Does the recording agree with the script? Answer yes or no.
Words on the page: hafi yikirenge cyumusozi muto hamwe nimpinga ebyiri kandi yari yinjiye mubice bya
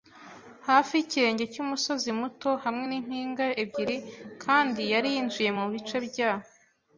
yes